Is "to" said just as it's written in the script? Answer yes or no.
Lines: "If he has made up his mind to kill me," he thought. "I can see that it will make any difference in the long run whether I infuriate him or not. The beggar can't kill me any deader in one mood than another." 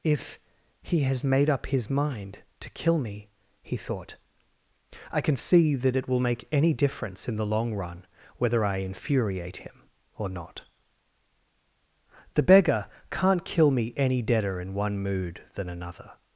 yes